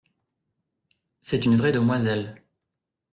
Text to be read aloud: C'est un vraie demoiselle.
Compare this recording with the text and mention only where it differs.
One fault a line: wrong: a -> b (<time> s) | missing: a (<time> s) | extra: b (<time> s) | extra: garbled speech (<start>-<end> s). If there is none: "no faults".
wrong: un -> une (1.4 s)